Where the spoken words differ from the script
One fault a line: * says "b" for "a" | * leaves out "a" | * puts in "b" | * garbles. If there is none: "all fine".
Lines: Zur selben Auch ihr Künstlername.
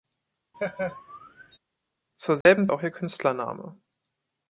all fine